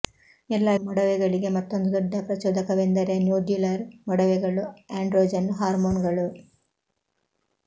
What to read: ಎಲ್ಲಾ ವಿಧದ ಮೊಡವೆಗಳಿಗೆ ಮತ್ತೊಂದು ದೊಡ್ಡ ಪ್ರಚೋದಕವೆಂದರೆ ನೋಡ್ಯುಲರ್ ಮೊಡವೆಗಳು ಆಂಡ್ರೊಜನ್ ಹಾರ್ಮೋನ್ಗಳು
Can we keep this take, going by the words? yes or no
no